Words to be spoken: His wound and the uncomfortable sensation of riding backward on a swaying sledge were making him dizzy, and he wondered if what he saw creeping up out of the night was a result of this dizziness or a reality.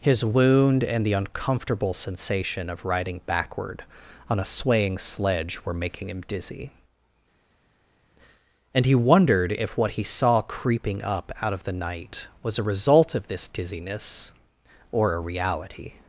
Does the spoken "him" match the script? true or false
true